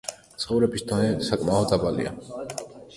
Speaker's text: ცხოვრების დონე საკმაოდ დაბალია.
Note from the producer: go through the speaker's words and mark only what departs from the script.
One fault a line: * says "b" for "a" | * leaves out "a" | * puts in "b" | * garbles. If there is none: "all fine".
all fine